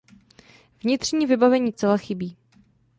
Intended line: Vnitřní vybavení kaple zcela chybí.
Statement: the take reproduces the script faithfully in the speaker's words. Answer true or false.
false